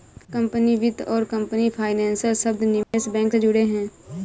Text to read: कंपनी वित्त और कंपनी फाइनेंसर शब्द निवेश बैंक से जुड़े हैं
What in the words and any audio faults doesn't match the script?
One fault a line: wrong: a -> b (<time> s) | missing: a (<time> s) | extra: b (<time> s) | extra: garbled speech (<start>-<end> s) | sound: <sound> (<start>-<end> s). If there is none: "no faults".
sound: dropout (2.8-2.9 s)